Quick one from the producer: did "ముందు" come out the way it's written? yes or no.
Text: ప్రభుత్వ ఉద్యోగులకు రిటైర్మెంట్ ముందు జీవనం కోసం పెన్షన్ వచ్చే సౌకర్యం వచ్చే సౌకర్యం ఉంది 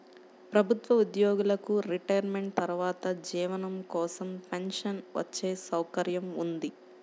no